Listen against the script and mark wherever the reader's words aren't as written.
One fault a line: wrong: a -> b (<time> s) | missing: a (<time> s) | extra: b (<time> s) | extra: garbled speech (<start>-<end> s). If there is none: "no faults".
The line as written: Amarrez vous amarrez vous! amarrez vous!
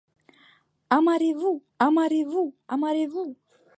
no faults